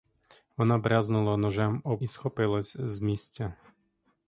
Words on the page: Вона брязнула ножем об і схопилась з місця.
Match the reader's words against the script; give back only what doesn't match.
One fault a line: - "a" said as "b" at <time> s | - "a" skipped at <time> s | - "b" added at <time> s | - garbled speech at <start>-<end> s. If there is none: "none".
none